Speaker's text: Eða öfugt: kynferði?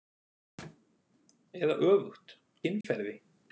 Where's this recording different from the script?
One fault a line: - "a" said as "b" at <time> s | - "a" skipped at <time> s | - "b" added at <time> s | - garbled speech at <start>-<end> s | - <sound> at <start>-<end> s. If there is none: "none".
- dropout at 2.8-2.8 s